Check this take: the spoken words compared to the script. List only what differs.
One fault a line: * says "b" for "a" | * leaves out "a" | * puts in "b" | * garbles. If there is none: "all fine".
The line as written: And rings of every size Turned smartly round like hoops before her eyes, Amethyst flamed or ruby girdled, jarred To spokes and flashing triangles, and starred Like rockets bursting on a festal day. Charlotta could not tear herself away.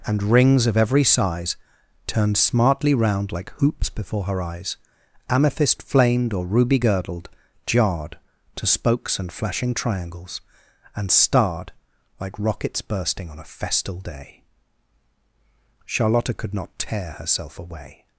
all fine